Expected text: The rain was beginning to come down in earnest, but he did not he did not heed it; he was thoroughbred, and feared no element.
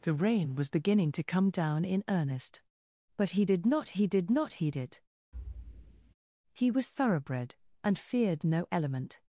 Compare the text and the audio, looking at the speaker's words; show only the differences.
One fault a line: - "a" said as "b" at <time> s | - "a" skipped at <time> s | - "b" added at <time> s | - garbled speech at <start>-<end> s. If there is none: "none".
none